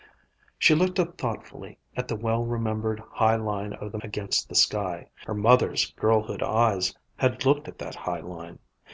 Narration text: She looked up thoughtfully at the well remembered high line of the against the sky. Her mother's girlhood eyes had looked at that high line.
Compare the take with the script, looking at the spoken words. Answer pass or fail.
pass